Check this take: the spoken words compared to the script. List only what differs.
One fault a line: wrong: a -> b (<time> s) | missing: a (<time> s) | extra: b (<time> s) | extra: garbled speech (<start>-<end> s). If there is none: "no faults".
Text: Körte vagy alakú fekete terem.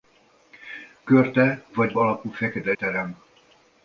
no faults